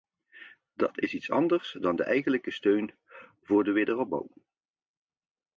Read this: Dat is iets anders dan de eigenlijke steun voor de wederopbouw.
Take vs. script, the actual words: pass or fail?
pass